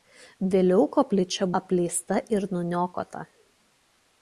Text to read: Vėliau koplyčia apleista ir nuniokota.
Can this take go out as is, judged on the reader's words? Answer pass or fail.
pass